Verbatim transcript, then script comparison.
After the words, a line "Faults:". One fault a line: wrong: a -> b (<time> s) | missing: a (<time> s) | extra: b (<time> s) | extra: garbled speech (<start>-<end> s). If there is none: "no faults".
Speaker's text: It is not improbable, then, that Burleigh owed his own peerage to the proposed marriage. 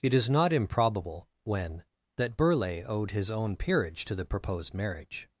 It is not improbable, when, that Burleigh owed his own peerage to the proposed marriage.
Faults:
wrong: then -> when (1.4 s)